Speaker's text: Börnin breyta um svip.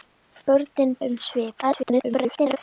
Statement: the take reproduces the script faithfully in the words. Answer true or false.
false